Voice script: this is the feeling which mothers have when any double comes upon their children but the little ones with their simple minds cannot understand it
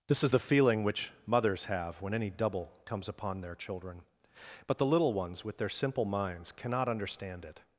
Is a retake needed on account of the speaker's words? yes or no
no